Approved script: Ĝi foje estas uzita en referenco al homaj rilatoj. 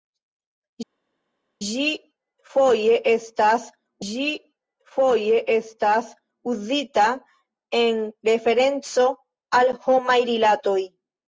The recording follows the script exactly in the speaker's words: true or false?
false